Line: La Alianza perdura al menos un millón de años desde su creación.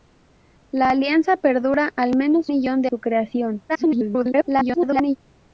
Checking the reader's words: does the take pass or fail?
fail